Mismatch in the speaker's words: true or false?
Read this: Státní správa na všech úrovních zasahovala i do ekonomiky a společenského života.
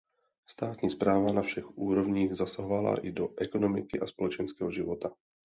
false